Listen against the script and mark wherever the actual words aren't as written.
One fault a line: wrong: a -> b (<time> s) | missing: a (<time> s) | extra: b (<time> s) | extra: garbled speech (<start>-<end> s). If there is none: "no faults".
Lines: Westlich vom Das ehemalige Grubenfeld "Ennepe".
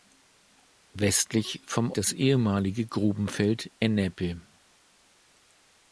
no faults